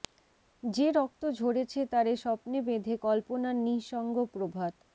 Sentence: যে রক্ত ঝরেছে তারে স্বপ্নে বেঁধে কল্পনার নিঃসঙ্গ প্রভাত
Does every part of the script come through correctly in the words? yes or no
yes